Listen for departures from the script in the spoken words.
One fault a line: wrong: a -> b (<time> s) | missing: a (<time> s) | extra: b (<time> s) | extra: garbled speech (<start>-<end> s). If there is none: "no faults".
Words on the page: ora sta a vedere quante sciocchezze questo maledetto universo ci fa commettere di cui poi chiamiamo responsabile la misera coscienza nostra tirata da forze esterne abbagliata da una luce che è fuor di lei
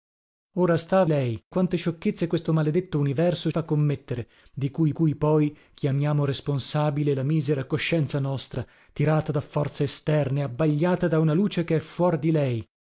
wrong: vedere -> lei (1.1 s)
missing: ci (3.5 s)
extra: cui (4.9 s)